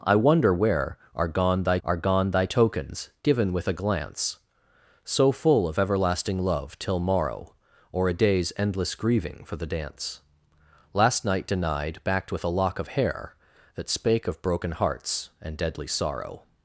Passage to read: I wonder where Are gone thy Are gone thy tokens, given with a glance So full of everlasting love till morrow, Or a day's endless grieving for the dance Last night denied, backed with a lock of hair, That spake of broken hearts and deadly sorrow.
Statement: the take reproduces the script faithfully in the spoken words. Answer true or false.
true